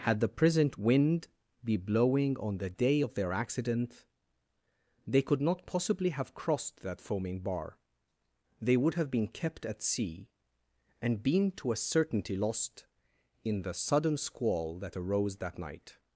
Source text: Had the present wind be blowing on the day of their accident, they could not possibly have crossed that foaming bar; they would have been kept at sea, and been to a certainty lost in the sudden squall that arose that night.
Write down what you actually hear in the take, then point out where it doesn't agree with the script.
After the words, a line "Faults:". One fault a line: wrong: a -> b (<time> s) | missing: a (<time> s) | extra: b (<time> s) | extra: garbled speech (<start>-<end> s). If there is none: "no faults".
Had the present wind be blowing on the day of their accident, they could not possibly have crossed that foaming bar; they would have been kept at sea, and been to a certainty lost in the sudden squall that arose that night.
Faults:
no faults